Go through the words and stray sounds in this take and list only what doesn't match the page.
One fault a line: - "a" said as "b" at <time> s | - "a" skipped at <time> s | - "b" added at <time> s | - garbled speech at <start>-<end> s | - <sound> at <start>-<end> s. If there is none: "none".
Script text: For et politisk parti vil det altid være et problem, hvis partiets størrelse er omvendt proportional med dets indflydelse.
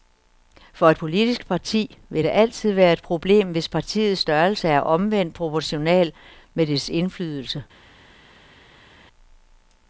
none